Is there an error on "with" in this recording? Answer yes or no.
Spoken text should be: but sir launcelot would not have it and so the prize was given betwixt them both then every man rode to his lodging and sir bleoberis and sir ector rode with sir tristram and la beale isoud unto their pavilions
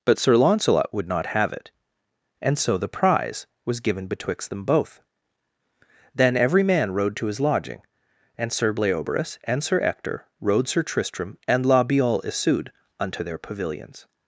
yes